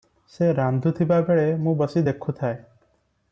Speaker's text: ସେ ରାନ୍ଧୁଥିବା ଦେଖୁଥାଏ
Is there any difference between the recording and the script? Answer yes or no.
yes